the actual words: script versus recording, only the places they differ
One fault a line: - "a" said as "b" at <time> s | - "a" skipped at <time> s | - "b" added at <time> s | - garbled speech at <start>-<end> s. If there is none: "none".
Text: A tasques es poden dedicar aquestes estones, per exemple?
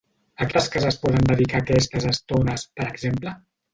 none